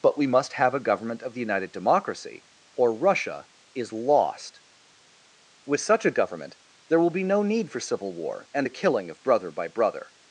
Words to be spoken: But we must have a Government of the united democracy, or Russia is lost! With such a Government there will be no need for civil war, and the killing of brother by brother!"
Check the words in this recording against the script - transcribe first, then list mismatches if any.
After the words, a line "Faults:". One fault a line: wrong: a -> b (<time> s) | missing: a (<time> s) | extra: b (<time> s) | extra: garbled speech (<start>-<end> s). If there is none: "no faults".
But we must have a Government of the united democracy, or Russia is lost! With such a Government there will be no need for civil war, and the killing of brother by brother!"
Faults:
no faults